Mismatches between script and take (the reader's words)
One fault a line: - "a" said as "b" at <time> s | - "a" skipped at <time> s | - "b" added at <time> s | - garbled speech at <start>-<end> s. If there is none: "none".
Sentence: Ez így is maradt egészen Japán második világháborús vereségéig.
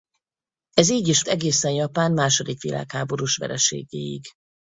- "maradt" skipped at 1.2 s